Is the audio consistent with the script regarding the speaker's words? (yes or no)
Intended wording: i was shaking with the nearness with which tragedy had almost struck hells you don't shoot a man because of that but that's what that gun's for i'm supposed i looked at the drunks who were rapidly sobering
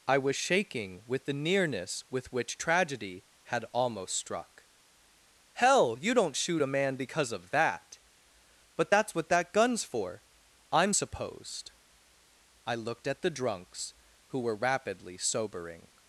no